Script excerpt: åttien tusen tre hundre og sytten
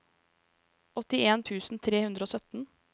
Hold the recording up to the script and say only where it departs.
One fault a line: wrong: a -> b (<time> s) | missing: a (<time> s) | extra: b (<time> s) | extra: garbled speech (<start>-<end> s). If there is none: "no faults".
no faults